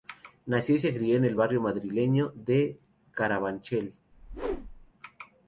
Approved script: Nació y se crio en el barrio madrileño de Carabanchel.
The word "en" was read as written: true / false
true